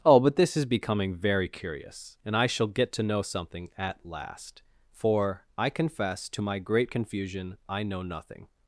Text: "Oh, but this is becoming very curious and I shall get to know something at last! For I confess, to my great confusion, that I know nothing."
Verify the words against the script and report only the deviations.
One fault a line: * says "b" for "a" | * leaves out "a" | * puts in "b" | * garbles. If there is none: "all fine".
* leaves out "that"